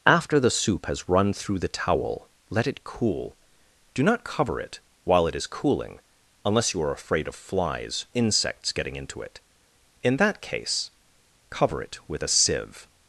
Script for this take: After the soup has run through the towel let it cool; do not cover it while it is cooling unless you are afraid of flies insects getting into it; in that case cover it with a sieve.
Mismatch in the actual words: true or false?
false